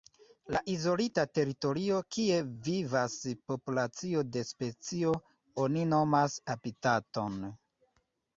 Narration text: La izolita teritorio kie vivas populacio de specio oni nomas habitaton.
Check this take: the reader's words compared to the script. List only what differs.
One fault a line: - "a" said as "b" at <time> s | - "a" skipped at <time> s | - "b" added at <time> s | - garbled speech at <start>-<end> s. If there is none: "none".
none